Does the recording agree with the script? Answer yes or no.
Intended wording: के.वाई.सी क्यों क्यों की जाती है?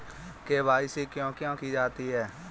yes